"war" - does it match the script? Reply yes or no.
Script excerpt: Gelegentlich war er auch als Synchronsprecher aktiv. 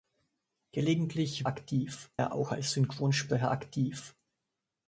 no